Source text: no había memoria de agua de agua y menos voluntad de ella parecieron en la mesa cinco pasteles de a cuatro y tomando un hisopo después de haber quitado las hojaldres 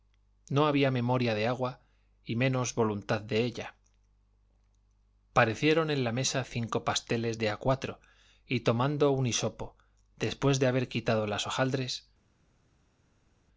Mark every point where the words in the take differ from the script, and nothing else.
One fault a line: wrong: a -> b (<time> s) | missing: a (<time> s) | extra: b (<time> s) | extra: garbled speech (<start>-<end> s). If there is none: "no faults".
missing: de agua (1.8 s)